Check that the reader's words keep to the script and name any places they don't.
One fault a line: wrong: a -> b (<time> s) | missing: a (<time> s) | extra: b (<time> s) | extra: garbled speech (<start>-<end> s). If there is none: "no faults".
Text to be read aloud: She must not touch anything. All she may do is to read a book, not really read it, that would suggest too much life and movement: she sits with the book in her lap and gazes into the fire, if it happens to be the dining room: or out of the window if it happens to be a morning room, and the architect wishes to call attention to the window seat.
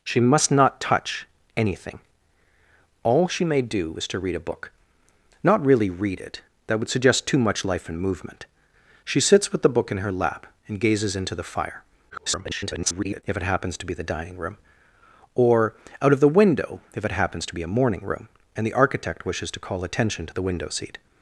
extra: garbled speech (12.1-13.2 s)